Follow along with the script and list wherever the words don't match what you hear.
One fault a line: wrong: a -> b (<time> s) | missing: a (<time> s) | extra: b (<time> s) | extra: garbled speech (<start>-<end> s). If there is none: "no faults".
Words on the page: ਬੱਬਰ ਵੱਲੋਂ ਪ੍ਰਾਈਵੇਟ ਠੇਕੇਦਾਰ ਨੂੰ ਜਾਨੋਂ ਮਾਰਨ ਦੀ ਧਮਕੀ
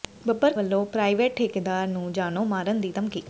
no faults